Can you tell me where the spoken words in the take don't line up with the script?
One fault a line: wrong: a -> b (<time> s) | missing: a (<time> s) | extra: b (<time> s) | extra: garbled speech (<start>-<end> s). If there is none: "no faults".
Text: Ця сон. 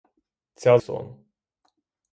no faults